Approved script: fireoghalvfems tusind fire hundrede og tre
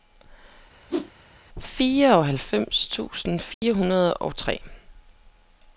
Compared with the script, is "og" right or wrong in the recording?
right